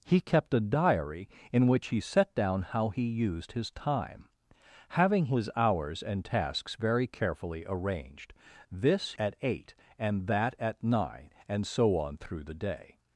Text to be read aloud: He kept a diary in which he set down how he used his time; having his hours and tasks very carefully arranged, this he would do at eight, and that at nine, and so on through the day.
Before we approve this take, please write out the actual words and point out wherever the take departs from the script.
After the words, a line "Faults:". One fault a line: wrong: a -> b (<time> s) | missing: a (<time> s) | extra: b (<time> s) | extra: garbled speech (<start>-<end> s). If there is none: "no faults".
He kept a diary in which he set down how he used his time; having his hours and tasks very carefully arranged, this at eight, and that at nine, and so on through the day.
Faults:
missing: he would do (9.1 s)